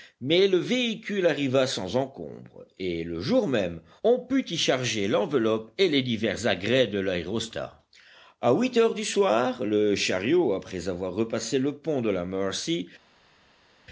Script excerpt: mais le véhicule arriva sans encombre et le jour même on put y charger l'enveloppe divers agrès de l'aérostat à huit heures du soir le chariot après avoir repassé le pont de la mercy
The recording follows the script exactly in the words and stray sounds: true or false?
false